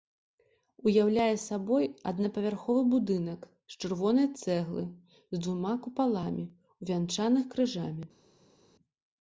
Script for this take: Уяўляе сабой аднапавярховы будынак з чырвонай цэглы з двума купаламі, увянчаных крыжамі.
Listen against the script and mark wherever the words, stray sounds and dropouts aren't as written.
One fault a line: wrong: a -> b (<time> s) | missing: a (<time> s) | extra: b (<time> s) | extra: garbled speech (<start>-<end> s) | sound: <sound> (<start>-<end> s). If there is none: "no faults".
no faults